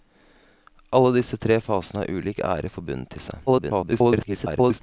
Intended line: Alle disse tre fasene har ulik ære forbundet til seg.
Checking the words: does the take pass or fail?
fail